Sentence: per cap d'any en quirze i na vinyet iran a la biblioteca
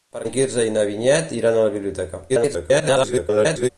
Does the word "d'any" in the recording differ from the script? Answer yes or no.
yes